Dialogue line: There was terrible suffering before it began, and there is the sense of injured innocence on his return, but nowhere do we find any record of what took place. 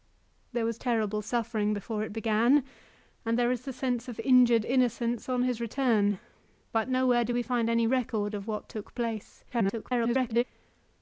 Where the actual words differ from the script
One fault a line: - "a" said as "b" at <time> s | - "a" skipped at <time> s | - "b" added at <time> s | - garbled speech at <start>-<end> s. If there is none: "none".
- garbled speech at 9.5-10.4 s